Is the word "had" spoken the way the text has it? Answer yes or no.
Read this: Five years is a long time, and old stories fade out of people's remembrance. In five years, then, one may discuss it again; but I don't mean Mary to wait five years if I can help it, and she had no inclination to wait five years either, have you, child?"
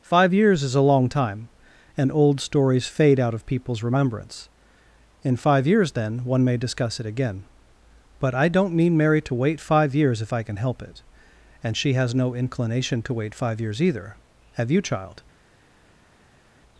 no